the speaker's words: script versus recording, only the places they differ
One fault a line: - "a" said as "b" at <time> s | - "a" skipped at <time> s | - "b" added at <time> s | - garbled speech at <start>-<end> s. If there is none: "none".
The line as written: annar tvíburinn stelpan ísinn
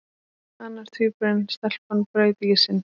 - "braut" added at 2.1 s